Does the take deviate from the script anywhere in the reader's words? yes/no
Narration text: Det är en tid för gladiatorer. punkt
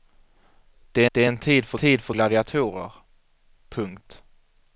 yes